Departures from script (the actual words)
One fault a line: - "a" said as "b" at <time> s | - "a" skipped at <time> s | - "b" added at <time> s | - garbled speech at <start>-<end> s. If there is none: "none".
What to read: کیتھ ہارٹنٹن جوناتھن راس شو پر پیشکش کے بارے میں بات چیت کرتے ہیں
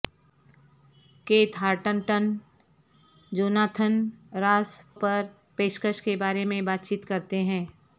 - "شو" skipped at 4.7 s